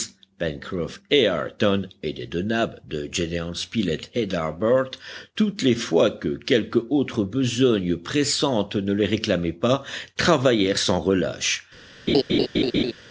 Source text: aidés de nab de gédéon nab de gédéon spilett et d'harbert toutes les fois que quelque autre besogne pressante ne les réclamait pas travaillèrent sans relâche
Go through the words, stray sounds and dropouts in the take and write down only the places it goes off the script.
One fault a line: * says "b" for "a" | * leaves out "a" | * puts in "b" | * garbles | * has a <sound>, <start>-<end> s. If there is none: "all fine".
* leaves out "nab de gédéon"
* has a laugh, 12.1-12.9 s